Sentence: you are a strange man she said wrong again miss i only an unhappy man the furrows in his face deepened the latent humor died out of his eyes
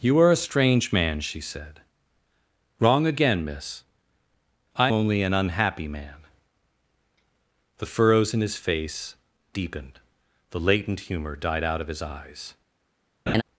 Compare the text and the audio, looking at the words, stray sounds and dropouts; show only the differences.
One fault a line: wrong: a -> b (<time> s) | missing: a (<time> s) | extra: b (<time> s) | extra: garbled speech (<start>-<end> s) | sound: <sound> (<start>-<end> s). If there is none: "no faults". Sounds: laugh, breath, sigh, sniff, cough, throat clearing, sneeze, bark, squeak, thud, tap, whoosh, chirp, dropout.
sound: laugh (13.3-13.4 s)